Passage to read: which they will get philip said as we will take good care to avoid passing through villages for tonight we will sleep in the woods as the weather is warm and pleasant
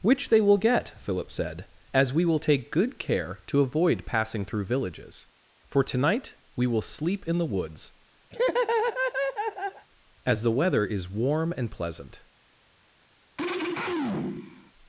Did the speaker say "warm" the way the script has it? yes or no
yes